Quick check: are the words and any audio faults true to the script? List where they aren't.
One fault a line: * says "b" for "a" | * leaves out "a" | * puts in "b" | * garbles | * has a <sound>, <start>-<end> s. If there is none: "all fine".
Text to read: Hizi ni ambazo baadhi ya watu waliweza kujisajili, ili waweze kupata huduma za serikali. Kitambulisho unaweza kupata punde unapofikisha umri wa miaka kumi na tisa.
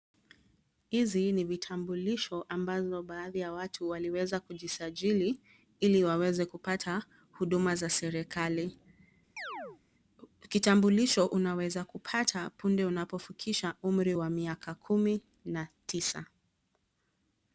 * puts in "vitambulisho"
* has a chirp, 9.4-9.8 s